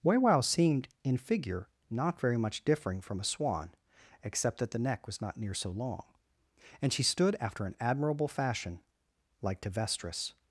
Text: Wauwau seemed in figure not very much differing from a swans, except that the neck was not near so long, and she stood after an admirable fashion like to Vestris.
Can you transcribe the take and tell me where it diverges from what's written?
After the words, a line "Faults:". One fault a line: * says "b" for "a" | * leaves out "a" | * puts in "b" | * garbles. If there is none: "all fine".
Wauwau seemed in figure not very much differing from a swan, except that the neck was not near so long, and she stood after an admirable fashion like to Vestris.
Faults:
* says "swan" for "swans"